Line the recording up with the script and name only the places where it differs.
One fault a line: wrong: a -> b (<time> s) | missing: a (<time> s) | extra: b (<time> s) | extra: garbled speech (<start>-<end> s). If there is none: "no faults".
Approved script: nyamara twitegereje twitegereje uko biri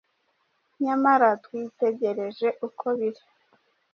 missing: twitegereje (2.5 s)